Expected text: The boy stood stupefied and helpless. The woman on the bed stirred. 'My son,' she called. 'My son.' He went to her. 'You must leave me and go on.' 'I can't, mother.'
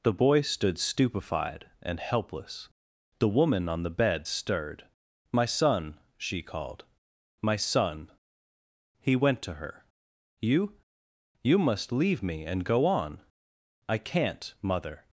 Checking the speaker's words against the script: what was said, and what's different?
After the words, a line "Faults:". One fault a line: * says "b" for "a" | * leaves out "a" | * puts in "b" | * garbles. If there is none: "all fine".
The boy stood stupefied and helpless. The woman on the bed stirred. 'My son,' she called. 'My son.' He went to her. 'You You must leave me and go on.' 'I can't, mother.'
Faults:
* puts in "You"